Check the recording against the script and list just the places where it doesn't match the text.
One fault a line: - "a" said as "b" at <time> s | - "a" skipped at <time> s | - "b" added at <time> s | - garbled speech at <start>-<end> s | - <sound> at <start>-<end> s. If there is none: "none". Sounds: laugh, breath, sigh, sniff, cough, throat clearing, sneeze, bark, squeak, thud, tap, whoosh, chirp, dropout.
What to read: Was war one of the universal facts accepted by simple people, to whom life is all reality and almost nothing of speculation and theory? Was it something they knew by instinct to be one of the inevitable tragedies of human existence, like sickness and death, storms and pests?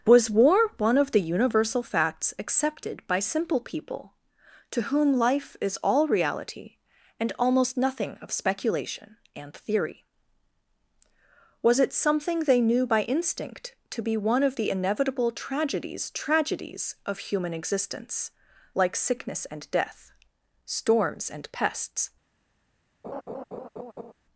- "tragedies" added at 16.1 s
- laugh at 23.0-24.1 s